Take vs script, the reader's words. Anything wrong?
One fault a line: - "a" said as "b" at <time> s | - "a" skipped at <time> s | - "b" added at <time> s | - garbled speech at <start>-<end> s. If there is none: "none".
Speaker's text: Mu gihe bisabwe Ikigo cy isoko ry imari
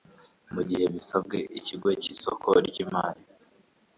none